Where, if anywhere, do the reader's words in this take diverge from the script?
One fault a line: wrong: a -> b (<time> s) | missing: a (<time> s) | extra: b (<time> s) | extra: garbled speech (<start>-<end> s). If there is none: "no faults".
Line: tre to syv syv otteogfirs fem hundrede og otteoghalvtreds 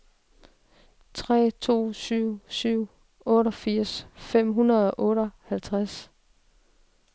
no faults